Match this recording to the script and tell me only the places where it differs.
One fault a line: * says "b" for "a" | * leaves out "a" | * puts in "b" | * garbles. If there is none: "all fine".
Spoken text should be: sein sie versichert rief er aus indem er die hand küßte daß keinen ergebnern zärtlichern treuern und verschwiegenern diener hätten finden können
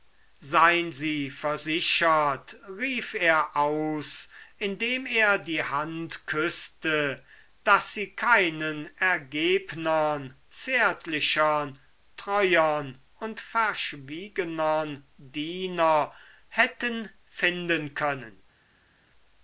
* puts in "sie"